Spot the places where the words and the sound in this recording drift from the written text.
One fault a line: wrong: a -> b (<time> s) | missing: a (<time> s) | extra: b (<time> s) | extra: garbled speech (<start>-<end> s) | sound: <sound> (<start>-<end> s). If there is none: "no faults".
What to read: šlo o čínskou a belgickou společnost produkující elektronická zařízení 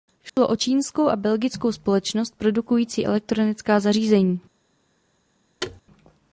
sound: dropout (0.3-0.4 s)
sound: thud (5.6-5.8 s)